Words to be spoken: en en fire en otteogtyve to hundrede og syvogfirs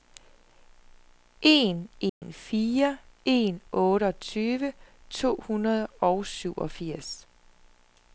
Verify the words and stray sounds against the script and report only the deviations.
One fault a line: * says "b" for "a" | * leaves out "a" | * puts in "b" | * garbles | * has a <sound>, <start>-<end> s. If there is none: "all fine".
* has a dropout, 2.1-2.2 s